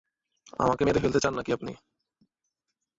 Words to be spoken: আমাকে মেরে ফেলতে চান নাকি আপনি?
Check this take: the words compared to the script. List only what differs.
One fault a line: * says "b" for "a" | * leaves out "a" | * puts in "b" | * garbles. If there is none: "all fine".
all fine